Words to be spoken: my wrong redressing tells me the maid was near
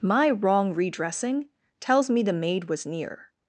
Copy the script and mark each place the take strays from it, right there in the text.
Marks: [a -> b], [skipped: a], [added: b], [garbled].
my wrong redressing tells me the maid was near